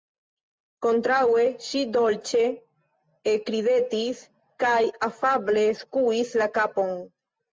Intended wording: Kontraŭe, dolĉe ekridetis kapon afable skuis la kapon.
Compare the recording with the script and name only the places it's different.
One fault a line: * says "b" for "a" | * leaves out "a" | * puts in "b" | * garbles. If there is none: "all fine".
* puts in "ŝi"
* says "kaj" for "kapon"